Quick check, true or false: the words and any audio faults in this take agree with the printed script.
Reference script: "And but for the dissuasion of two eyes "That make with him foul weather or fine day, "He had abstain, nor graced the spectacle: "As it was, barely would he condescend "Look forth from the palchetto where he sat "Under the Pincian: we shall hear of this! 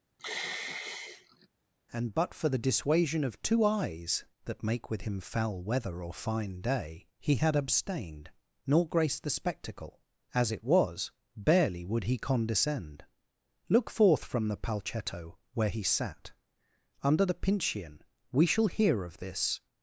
false